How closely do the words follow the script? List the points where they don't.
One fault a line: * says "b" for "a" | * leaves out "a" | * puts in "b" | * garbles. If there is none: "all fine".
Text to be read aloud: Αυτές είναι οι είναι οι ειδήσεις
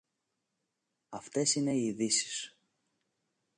* leaves out "είναι οι"